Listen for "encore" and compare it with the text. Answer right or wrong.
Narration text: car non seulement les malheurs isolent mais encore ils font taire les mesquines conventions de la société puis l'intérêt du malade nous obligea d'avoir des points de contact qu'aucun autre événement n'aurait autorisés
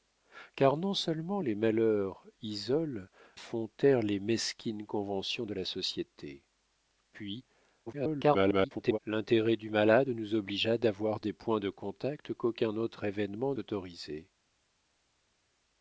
wrong